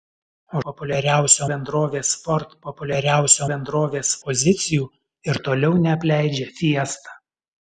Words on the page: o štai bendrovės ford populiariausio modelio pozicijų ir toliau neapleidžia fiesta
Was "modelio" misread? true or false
true